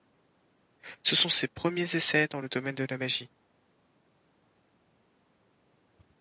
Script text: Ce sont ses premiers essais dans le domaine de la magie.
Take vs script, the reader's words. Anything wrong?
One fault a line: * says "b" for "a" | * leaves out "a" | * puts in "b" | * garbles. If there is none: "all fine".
all fine